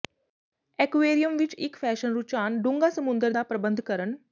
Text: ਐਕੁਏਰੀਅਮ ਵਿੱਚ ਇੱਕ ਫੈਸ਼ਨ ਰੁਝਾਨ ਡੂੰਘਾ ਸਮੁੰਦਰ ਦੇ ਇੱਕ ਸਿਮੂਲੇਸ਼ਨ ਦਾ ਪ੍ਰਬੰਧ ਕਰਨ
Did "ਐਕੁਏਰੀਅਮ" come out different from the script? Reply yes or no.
no